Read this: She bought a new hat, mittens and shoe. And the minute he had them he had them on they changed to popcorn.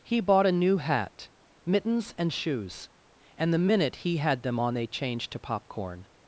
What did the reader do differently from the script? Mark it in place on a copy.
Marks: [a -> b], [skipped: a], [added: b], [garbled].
[She -> He] bought a new hat, mittens and [shoe. -> shoes] And the minute he had them [skipped: he had them] on they changed to popcorn.